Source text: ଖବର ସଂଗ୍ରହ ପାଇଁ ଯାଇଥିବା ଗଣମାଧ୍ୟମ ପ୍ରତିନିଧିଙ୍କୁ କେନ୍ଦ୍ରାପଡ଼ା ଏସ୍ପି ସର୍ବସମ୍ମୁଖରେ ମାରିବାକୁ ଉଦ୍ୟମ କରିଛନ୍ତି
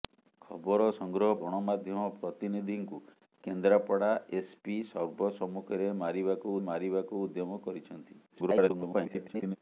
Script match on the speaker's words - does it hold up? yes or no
no